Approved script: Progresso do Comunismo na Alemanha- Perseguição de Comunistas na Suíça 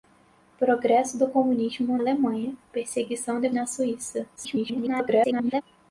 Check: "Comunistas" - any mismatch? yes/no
yes